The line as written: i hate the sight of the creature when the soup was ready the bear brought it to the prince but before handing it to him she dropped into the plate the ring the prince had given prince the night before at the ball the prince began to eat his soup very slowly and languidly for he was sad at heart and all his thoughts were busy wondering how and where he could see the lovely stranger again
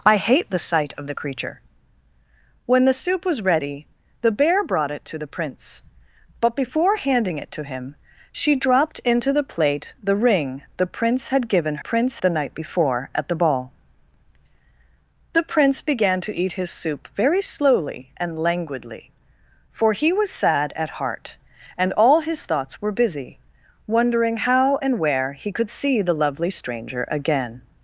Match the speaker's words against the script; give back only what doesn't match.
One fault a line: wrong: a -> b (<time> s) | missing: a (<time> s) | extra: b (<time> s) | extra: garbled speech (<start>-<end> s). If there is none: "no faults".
no faults